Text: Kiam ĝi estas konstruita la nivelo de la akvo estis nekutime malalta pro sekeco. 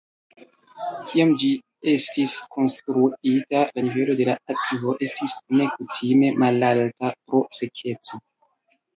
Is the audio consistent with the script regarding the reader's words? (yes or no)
no